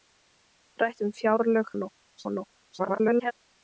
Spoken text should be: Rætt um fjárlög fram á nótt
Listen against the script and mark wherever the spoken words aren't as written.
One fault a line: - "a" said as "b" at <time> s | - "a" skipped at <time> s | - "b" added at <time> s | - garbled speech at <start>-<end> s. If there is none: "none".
- "fram" said as "nótt" at 1.8 s
- garbled speech at 2.8-3.3 s